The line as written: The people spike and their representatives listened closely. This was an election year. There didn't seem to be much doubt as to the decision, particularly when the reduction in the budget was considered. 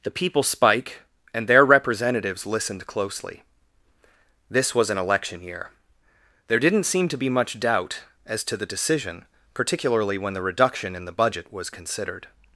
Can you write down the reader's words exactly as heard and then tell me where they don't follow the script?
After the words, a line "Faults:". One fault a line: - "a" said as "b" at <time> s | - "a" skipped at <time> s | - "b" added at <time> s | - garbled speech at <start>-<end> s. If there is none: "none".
The people spike and their representatives listened closely. This was an election year. There didn't seem to be much doubt as to the decision, particularly when the reduction in the budget was considered.
Faults:
none